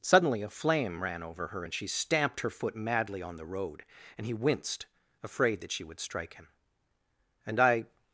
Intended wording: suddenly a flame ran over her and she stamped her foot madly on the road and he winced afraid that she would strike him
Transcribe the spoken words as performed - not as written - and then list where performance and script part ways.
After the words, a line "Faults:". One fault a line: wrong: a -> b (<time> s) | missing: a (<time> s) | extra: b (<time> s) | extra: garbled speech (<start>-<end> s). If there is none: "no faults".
suddenly a flame ran over her and she stamped her foot madly on the road and he winced afraid that she would strike him and i
Faults:
extra: and i (7.5 s)